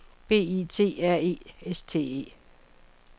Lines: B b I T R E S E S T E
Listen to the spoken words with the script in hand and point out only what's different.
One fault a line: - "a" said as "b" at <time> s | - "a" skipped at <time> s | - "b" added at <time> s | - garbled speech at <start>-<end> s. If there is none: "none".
- "b" skipped at 0.6 s
- "E S" skipped at 1.8 s